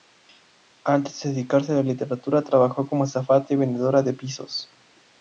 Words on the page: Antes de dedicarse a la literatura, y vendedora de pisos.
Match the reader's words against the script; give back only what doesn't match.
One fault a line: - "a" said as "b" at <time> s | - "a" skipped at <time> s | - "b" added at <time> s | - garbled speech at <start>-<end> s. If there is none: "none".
- "trabajó como azafata" added at 2.4 s